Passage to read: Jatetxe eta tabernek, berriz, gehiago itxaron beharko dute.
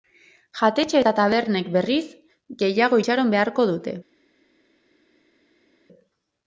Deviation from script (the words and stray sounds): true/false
false